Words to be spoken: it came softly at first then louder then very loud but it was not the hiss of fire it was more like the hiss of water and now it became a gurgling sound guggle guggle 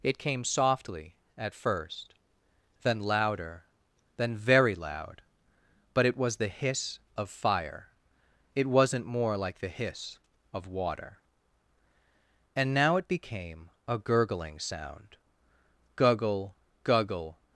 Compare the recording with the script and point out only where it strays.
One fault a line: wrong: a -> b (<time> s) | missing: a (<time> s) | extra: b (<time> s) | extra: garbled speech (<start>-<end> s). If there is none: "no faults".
missing: not (6.4 s)
wrong: was -> wasn't (8.7 s)